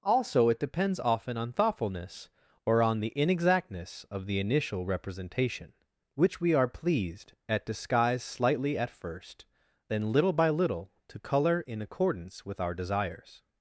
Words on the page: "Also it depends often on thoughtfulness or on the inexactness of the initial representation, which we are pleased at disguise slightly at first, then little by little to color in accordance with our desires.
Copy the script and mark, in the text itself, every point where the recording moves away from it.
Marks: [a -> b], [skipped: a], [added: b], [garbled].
"Also it depends often on thoughtfulness or on the inexactness of the initial representation, which we are pleased at disguise slightly at first, then little by little to color in accordance with our desires.